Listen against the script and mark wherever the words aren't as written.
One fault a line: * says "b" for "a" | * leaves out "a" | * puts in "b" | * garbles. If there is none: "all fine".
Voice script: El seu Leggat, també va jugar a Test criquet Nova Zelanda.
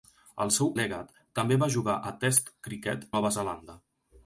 all fine